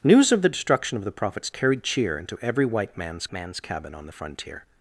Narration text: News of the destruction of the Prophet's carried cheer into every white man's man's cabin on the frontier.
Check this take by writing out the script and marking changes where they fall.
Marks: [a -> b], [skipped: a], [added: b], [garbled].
News of the destruction of the Prophet's carried cheer into every white man's man's cabin on the frontier.